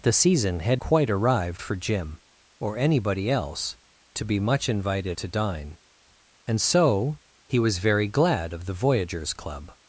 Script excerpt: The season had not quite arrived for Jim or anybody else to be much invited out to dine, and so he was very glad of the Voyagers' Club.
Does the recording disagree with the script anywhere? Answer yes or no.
yes